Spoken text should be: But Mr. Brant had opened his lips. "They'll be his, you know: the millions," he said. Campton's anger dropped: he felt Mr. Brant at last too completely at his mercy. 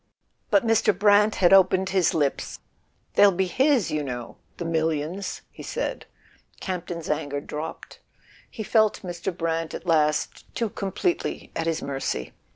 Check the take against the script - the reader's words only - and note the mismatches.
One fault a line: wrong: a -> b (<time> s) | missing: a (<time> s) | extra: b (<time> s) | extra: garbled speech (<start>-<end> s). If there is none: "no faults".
no faults